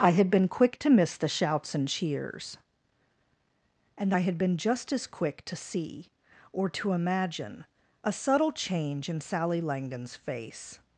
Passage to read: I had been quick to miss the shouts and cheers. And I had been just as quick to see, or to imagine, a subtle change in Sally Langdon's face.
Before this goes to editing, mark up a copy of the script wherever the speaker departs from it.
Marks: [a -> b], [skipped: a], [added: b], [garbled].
I had been quick to miss the shouts and cheers. And I had been just as quick to see, or to imagine, a subtle change in Sally Langdon's face.